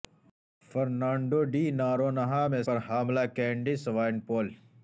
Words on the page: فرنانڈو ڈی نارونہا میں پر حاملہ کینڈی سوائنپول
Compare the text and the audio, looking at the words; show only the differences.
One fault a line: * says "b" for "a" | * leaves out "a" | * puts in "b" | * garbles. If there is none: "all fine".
all fine